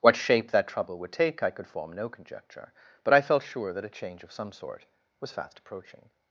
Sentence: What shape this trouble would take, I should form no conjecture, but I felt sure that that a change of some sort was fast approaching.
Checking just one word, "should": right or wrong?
wrong